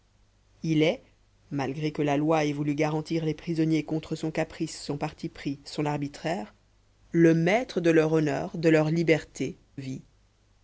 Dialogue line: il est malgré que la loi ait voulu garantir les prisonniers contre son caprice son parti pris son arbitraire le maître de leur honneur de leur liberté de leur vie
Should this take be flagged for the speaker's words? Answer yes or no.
yes